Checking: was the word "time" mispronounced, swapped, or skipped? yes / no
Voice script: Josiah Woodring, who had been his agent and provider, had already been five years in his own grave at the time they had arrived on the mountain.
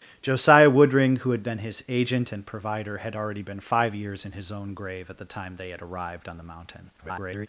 no